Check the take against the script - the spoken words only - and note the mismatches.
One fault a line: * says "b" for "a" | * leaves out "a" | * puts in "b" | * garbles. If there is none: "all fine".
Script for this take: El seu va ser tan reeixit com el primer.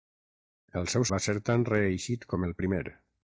all fine